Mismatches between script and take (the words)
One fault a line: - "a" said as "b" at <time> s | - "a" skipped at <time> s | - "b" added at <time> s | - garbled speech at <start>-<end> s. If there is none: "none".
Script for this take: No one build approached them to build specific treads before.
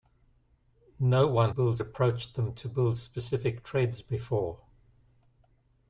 none